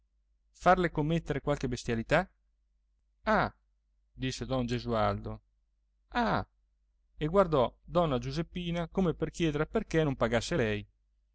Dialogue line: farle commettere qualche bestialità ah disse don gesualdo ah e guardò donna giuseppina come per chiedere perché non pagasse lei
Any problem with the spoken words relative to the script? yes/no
no